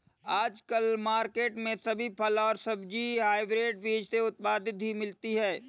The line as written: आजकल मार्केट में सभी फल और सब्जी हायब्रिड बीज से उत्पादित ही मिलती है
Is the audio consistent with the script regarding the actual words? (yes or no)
yes